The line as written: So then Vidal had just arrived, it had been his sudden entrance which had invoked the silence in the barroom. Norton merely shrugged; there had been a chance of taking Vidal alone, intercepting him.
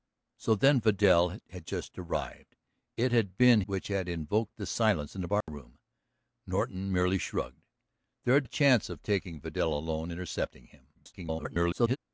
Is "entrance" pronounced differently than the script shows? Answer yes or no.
yes